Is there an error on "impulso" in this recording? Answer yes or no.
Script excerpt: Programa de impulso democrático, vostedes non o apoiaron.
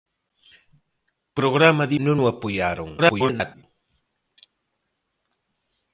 yes